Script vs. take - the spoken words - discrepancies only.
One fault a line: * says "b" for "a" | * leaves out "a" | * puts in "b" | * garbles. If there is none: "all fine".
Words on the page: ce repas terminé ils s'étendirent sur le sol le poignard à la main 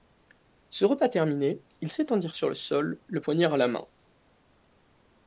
all fine